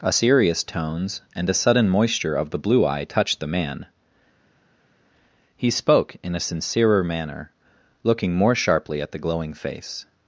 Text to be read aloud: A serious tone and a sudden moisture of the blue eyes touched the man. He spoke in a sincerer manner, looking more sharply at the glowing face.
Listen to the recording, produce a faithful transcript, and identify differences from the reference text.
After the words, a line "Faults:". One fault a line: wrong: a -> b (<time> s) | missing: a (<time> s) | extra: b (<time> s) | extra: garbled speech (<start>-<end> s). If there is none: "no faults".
A serious tones and a sudden moisture of the blue eye touched the man. He spoke in a sincerer manner, looking more sharply at the glowing face.
Faults:
wrong: tone -> tones (0.6 s)
wrong: eyes -> eye (2.9 s)